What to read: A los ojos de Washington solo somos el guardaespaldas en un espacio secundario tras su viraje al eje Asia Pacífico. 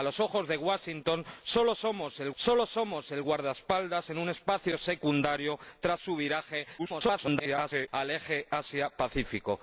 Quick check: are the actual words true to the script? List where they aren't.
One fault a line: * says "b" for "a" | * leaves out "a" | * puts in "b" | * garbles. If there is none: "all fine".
* puts in "solo somos el"
* garbles